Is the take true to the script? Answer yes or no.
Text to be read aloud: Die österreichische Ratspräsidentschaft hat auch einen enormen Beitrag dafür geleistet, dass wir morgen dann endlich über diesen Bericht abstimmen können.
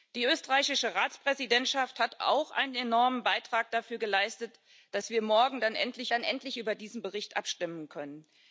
no